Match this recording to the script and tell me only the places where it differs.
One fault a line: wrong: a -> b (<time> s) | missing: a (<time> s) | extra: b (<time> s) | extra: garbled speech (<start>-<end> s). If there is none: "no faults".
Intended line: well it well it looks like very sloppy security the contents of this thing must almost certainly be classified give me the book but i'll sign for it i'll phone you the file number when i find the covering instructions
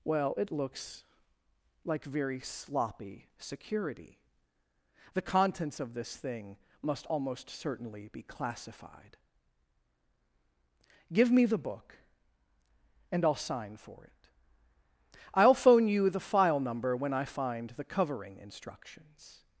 missing: well it (0.5 s)
wrong: but -> and (13.1 s)